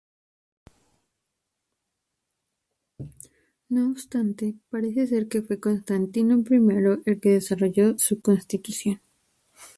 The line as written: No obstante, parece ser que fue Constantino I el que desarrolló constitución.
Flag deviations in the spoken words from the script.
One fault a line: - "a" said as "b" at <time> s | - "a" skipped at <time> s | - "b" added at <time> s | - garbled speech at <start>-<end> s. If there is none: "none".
- "su" added at 8.0 s